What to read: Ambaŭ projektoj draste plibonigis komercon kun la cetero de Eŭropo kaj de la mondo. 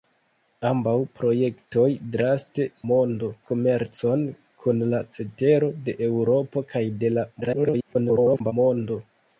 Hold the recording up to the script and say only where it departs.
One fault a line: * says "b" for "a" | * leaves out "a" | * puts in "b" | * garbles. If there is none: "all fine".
* says "mondo" for "plibonigis"
* garbles